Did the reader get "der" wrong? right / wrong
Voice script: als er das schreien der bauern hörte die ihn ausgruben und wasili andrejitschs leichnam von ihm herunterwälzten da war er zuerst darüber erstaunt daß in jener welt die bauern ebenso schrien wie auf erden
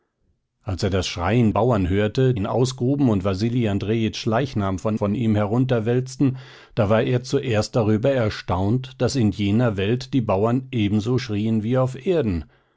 wrong